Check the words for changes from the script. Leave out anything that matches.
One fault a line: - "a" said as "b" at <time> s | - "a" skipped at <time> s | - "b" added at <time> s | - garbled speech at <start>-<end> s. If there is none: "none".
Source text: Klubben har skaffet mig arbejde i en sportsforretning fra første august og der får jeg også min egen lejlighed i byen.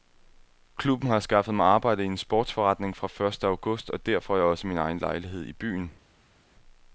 none